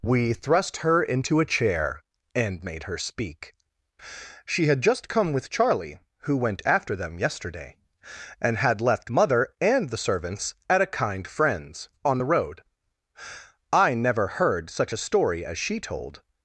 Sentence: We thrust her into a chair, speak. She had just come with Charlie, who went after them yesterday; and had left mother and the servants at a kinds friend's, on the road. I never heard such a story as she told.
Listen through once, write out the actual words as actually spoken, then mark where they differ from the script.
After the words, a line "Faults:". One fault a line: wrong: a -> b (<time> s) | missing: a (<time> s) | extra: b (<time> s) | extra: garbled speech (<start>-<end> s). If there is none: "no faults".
We thrust her into a chair, and made her speak. She had just come with Charlie, who went after them yesterday; and had left mother and the servants at a kind friend's, on the road. I never heard such a story as she told.
Faults:
extra: and made her (2.3 s)
wrong: kinds -> kind (10.9 s)